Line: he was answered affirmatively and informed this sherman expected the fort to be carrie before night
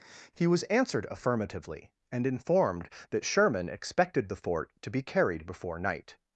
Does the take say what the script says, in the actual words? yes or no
no